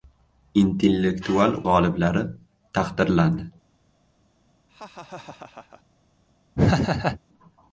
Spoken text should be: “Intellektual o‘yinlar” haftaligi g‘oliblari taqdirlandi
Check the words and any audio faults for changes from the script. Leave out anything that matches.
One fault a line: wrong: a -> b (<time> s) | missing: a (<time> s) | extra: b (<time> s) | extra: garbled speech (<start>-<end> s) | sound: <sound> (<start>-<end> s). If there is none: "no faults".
missing: o‘yinlar haftaligi (1.5 s)
sound: laugh (4.7-5.8 s)
sound: laugh (6.5-7.2 s)